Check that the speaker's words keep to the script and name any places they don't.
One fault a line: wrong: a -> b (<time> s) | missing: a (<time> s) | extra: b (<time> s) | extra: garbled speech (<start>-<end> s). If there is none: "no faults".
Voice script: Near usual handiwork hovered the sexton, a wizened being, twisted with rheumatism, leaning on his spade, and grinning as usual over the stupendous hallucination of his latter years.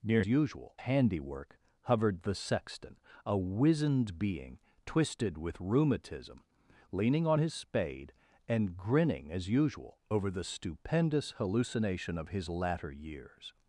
no faults